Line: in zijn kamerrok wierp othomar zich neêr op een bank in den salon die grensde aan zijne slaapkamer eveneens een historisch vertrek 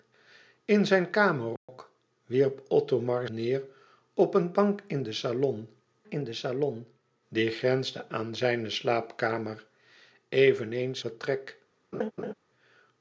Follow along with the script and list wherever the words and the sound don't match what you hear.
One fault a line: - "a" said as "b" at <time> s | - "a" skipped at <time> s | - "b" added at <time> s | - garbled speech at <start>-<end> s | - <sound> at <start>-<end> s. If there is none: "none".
- dropout at 1.6-1.7 s
- "zich" skipped at 3.3 s
- "in den salon" added at 6.1 s
- "een historisch" skipped at 11.0 s
- laugh at 11.9-12.3 s